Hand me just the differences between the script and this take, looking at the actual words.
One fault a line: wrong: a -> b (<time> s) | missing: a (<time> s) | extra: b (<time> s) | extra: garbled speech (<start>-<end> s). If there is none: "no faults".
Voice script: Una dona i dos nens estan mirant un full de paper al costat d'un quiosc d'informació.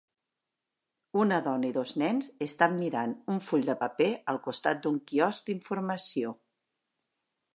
no faults